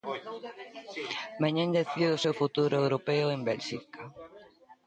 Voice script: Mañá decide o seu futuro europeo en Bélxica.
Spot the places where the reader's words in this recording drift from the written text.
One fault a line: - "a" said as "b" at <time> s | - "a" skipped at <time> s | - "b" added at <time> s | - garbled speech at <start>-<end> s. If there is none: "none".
none